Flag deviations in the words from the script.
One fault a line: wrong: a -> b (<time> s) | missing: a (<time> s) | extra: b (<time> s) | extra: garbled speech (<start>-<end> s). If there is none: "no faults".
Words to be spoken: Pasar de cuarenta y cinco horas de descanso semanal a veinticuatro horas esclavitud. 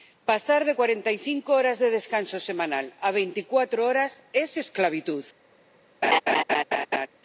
extra: es (4.3 s)